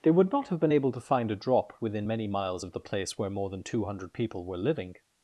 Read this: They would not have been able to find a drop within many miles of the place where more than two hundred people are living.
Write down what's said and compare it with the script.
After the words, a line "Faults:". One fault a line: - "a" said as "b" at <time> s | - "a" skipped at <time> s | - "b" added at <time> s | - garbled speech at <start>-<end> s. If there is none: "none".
They would not have been able to find a drop within many miles of the place where more than two hundred people were living.
Faults:
- "are" said as "were" at 4.4 s